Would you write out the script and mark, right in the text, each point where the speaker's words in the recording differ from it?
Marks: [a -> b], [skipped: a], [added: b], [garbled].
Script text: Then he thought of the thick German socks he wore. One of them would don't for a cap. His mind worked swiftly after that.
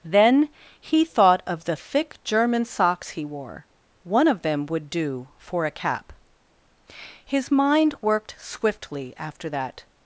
Then he thought of the thick German socks he wore. One of them would [don't -> do] for a cap. His mind worked swiftly after that.